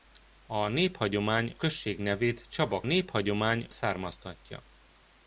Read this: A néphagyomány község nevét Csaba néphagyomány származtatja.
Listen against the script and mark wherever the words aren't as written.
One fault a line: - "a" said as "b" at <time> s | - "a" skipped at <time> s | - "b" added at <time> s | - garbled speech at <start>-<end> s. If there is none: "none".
none